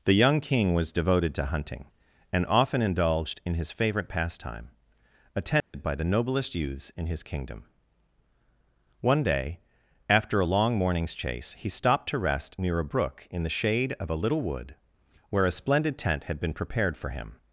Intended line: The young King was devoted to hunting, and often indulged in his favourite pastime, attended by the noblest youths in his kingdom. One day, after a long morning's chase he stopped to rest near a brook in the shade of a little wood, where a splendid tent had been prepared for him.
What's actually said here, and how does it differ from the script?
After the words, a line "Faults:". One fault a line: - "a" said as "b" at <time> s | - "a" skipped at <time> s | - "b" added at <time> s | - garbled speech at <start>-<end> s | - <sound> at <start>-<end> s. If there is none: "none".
The young King was devoted to hunting, and often indulged in his favourite pastime, attended by the noblest youths in his kingdom. One day, after a long morning's chase he stopped to rest near a brook in the shade of a little wood, where a splendid tent had been prepared for him.
Faults:
- dropout at 5.6-5.7 s